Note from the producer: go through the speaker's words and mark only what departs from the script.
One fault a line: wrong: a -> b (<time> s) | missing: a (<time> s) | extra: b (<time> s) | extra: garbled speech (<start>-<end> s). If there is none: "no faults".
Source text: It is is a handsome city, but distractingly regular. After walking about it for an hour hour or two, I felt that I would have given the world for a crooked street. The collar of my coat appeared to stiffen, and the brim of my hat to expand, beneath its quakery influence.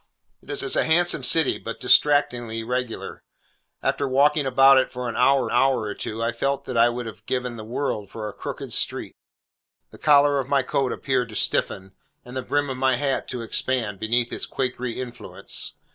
no faults